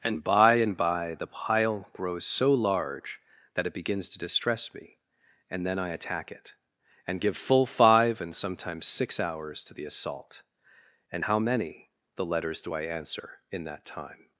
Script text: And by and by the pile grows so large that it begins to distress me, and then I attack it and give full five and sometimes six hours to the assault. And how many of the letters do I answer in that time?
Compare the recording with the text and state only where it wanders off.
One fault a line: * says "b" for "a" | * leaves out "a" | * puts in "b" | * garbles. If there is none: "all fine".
* leaves out "of"